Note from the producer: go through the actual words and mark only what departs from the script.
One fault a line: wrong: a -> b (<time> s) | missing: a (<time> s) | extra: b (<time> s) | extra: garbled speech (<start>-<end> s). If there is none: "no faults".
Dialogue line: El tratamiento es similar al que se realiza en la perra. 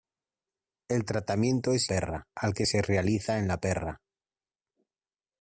wrong: similar -> perra (1.9 s)